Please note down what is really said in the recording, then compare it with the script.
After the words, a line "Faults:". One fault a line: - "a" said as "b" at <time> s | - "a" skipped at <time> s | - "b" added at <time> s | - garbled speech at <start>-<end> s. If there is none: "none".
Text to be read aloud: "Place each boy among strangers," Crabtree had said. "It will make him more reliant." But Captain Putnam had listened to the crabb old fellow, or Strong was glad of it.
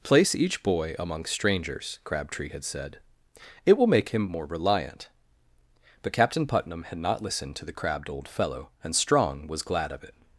"Place each boy among strangers," Crabtree had said. "It will make him more reliant." But Captain Putnam had not listened to the crabbed old fellow, and Strong was glad of it.
Faults:
- "not" added at 7.0 s
- "crabb" said as "crabbed" at 7.7 s
- "or" said as "and" at 8.8 s